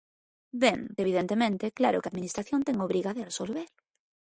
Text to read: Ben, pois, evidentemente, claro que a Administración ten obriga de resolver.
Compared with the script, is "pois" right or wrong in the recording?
wrong